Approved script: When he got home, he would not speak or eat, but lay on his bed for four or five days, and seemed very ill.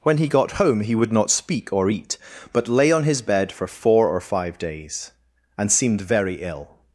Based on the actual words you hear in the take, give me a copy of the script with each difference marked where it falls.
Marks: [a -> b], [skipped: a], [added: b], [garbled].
When he got home, he would not speak or eat, but lay on his bed for four or five days, and seemed very ill.